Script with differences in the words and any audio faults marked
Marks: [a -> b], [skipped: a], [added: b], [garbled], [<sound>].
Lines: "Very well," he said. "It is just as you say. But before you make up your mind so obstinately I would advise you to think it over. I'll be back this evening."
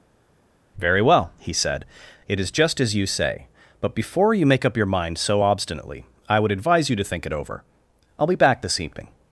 "Very well," he said. "It is just as you say. But before you make up your mind so obstinately I would advise you to think it over. I'll be back this evening."